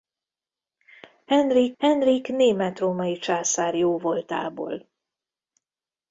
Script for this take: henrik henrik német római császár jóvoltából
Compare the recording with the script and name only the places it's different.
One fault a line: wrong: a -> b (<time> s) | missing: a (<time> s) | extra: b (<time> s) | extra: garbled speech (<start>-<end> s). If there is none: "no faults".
no faults